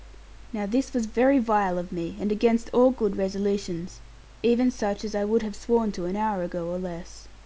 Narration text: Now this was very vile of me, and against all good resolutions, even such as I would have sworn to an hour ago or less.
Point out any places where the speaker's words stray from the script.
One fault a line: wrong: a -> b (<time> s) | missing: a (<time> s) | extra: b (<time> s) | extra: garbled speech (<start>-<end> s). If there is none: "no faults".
no faults